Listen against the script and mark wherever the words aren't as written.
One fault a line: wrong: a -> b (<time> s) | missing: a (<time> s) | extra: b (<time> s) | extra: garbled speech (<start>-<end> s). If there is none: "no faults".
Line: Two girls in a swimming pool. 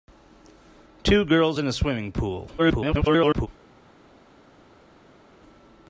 extra: garbled speech (2.6-3.5 s)